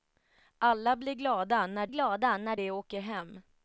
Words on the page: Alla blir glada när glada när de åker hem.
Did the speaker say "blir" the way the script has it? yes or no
yes